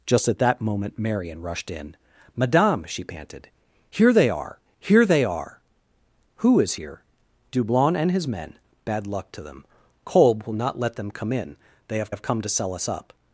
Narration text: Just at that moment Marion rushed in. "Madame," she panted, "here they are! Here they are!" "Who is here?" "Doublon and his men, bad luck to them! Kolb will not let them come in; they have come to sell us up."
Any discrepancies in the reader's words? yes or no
yes